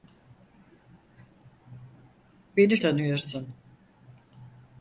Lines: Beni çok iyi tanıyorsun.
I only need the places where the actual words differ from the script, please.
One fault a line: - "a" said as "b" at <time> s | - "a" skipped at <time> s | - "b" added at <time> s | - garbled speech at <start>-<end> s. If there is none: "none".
- "çok iyi" skipped at 2.8 s